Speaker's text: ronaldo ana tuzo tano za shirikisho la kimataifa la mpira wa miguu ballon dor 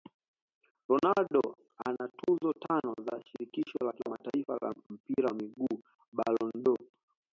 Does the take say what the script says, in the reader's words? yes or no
yes